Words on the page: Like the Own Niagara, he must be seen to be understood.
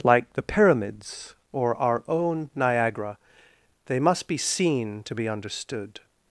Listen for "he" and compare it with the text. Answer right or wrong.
wrong